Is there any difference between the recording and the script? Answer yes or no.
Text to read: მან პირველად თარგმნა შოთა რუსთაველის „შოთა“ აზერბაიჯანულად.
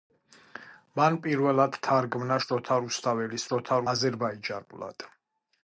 no